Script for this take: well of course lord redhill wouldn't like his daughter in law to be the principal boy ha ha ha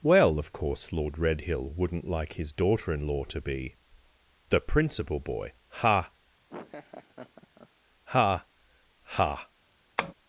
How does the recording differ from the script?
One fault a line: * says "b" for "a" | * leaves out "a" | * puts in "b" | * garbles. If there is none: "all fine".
all fine